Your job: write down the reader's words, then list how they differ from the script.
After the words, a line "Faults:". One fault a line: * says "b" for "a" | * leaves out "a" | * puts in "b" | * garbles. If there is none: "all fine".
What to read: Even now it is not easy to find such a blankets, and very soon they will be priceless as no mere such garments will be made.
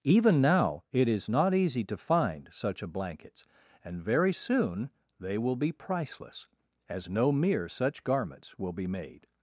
Even now it is not easy to find such a blankets, and very soon they will be priceless as no mere such garments will be made.
Faults:
all fine